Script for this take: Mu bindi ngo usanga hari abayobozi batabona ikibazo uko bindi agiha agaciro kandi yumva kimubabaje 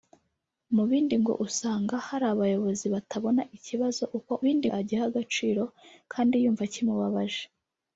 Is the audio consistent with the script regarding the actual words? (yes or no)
yes